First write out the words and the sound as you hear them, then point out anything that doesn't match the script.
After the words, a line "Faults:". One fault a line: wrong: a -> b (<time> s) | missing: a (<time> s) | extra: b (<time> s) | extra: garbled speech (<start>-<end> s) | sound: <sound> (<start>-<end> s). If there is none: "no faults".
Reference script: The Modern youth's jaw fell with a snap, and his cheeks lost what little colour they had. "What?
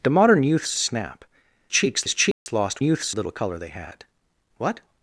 The Modern youth's a snap, cheeks his cheeks lost youth's little colour they had. "What?
Faults:
missing: jaw fell with (0.8 s)
wrong: and -> cheeks (1.7 s)
sound: dropout (2.3-2.5 s)
wrong: what -> youth's (2.8 s)